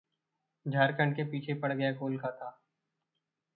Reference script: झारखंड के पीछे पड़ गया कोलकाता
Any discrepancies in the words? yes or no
no